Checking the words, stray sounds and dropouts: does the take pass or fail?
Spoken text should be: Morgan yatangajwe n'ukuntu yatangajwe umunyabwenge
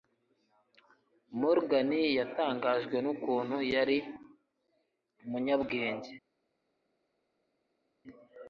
fail